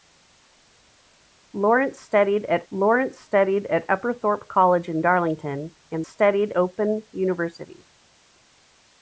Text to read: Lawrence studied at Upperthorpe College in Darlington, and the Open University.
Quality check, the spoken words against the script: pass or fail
fail